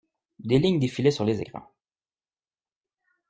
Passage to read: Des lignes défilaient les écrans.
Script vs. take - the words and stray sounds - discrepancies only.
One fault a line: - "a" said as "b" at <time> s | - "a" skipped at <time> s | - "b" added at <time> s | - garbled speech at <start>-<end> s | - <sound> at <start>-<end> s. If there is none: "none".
- "sur" added at 1.1 s